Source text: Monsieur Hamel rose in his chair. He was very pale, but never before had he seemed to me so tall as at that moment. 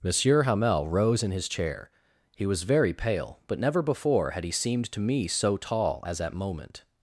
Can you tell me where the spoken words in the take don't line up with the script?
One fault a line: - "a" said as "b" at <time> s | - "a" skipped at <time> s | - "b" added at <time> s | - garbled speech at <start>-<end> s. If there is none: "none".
- "that" skipped at 6.3 s